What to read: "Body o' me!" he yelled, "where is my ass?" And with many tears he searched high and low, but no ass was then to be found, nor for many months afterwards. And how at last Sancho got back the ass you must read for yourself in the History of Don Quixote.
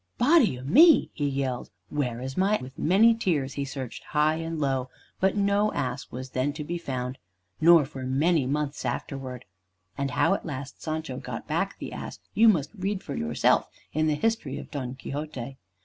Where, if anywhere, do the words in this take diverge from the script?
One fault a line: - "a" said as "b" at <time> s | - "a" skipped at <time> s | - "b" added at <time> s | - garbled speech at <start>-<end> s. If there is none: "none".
- "ass And" skipped at 2.6 s